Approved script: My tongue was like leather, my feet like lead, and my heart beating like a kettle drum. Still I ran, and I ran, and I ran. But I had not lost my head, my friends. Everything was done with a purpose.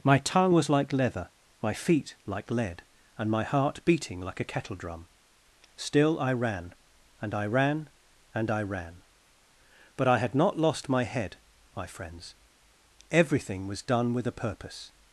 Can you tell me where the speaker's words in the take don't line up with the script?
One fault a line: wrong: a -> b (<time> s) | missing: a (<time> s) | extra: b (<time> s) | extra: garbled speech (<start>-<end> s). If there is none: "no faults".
no faults